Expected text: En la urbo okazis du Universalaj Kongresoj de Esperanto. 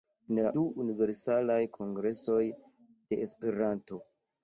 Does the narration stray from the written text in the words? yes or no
yes